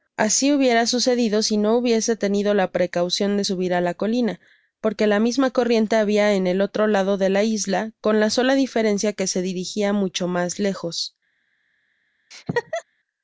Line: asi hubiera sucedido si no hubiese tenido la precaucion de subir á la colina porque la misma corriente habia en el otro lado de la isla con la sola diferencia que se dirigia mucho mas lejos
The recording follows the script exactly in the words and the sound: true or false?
false